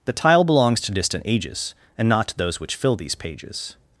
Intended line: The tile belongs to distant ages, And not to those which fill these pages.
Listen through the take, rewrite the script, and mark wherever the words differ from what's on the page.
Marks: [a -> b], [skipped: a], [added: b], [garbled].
The tile belongs to distant ages, And not to those which fill these pages.